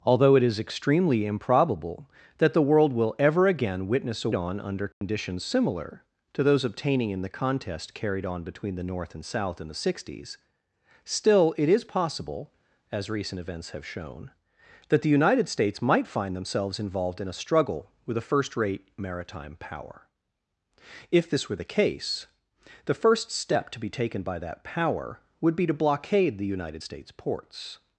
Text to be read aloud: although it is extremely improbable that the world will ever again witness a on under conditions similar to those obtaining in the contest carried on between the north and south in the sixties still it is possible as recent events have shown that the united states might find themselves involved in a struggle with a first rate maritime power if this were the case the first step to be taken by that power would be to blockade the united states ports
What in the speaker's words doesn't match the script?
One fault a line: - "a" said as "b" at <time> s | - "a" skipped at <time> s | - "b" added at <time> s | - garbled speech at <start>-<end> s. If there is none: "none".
none